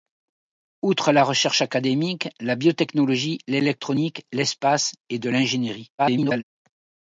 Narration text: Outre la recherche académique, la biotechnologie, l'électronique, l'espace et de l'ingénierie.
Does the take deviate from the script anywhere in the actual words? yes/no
yes